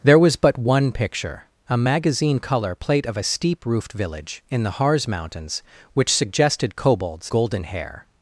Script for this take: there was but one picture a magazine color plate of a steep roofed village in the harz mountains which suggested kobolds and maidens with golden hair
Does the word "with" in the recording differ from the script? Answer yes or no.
yes